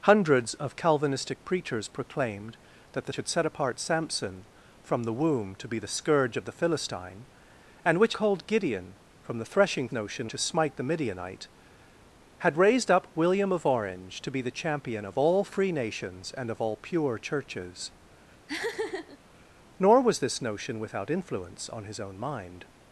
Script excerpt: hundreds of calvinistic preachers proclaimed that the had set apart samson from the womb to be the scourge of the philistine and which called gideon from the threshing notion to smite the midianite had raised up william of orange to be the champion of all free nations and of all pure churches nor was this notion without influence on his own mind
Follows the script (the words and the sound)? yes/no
no